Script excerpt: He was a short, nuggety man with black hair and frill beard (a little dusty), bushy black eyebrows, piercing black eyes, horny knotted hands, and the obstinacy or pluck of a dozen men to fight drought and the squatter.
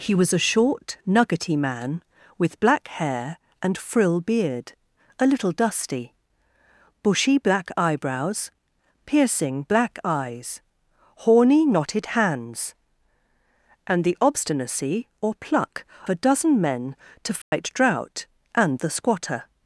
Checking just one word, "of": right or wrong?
wrong